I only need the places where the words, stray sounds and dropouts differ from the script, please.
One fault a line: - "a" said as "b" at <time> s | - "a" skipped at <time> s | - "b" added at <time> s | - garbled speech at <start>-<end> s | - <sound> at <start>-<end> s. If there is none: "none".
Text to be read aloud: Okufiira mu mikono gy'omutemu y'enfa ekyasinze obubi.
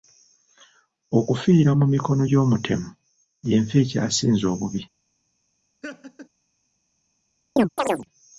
- laugh at 5.8-6.3 s
- chirp at 7.6-8.1 s